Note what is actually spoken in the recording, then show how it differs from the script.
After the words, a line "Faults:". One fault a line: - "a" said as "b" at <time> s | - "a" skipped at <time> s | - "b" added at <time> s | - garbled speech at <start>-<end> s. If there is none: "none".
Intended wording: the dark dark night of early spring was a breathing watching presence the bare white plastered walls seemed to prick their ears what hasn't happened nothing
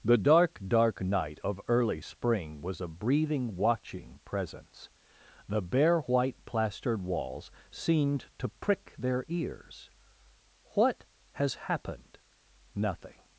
the dark dark night of early spring was a breathing watching presence the bare white plastered walls seemed to prick their ears what has happened nothing
Faults:
- "hasn't" said as "has" at 11.3 s